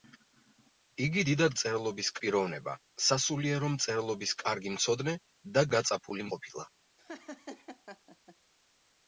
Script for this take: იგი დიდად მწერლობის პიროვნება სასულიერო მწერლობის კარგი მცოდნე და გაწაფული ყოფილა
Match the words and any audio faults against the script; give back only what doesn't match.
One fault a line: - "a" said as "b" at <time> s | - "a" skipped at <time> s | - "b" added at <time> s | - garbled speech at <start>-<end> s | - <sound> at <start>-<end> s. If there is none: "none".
- laugh at 7.0-8.4 s